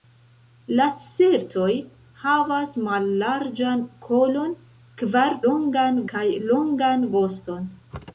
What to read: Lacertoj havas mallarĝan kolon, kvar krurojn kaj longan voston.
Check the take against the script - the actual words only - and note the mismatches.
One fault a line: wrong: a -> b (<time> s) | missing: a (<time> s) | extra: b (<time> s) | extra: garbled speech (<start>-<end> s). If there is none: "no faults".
wrong: krurojn -> longan (5.5 s)